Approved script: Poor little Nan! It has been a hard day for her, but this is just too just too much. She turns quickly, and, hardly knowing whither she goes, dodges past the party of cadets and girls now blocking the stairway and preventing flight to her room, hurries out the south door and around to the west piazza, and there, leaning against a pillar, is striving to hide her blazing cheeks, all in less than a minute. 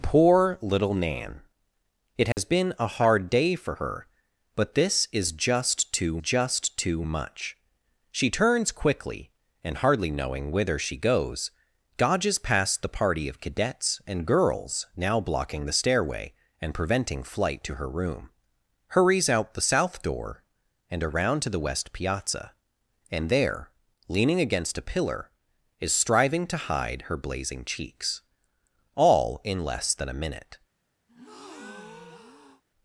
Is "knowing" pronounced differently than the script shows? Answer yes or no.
no